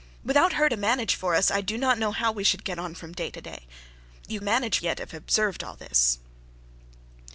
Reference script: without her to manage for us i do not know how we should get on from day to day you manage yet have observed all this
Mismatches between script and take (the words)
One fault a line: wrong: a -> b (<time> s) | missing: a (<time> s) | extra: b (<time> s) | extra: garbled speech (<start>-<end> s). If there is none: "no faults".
no faults